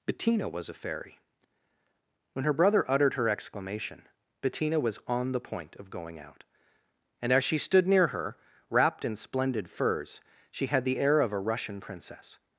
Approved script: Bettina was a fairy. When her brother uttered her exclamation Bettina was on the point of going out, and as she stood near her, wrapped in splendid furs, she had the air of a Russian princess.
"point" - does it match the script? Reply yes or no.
yes